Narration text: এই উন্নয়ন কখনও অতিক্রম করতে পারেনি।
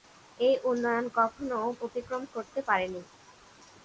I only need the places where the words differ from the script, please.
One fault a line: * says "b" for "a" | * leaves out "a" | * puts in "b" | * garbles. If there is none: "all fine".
all fine